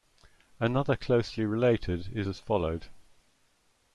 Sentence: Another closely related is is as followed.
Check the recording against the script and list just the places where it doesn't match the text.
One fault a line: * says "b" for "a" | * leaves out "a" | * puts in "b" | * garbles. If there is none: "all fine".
* leaves out "is"